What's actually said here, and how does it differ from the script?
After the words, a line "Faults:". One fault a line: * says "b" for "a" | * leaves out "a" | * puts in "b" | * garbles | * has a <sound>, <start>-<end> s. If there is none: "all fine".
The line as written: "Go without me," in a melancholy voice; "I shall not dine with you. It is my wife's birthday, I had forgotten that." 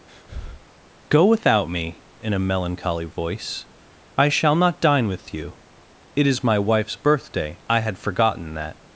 "Go without me," in a melancholy voice; "I shall not dine with you. It is my wife's birthday, I had forgotten that."
Faults:
* has a breath, 0.1-0.7 s